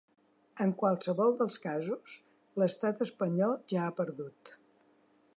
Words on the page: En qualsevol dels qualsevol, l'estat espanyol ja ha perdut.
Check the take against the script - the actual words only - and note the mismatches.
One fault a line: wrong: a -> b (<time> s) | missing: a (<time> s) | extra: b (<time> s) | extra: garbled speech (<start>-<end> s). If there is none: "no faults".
wrong: qualsevol -> casos (1.6 s)